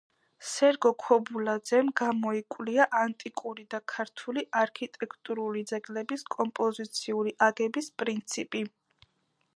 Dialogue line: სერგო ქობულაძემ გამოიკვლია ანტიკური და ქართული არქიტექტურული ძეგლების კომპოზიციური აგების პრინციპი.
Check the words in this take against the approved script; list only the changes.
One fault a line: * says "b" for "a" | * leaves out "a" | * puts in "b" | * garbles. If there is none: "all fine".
all fine